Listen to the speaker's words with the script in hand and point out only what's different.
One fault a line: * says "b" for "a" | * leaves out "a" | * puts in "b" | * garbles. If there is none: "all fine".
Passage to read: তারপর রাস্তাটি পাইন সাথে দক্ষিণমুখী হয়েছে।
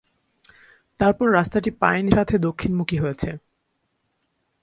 all fine